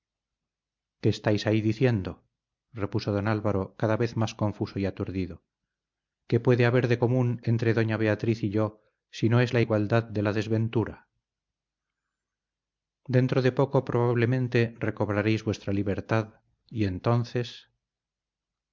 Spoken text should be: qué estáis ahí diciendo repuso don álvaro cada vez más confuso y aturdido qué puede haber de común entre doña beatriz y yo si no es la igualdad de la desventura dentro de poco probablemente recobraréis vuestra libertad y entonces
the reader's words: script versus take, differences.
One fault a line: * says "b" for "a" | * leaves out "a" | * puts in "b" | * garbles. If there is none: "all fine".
all fine